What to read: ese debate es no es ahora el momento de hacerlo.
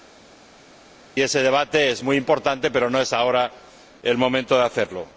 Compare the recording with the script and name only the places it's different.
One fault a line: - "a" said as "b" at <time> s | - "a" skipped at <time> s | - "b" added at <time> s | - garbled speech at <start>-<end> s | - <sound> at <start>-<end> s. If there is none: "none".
- "muy importante pero" added at 2.0 s